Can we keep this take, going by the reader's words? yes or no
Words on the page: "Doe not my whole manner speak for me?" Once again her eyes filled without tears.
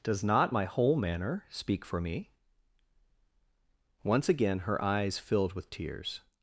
no